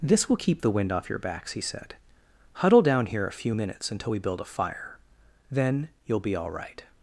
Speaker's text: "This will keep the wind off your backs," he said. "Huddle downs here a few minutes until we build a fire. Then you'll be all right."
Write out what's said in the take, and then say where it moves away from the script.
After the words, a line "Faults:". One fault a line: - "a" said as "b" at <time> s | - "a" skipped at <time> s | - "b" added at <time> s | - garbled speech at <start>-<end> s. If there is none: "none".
"This will keep the wind off your backs," he said. "Huddle down here a few minutes until we build a fire. Then you'll be all right."
Faults:
- "downs" said as "down" at 2.8 s